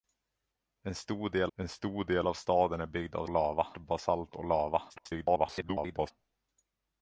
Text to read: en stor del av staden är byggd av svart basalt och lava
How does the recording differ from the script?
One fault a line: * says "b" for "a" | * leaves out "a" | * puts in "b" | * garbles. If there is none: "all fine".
* puts in "en stor del"
* says "lava" for "svart"
* garbles